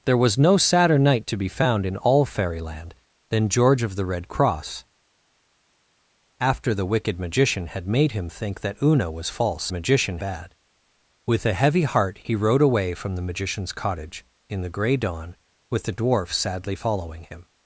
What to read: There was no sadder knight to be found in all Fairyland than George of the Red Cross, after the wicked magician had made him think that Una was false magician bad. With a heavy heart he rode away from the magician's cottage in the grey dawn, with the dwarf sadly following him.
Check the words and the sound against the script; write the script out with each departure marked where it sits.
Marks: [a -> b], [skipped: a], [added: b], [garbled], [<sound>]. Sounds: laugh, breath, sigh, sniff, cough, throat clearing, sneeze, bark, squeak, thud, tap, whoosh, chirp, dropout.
There was no sadder knight to be found in all Fairyland than George of the Red Cross, after the wicked magician had made him think that Una was false magician bad. With a heavy heart he rode away from the magician's cottage in the grey dawn, with the dwarf sadly following him.